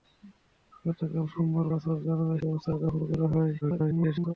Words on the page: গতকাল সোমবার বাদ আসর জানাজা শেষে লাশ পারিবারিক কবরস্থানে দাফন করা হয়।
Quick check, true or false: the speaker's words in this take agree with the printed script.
false